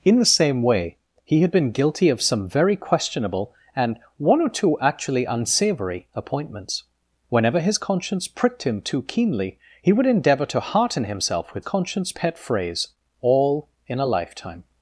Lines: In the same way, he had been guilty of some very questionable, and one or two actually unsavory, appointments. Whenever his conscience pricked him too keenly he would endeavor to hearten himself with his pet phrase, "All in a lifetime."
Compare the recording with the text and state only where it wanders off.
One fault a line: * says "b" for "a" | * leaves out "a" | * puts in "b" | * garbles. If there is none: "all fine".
* says "conscience" for "his"